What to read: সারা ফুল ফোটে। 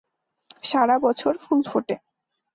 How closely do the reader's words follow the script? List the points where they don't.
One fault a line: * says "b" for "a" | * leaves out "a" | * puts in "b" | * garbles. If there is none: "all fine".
* puts in "বছর"